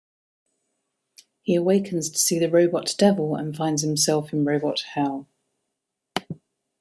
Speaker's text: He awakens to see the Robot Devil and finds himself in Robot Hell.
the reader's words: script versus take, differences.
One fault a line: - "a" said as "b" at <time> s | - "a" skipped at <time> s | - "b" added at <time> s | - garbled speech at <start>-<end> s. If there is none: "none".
none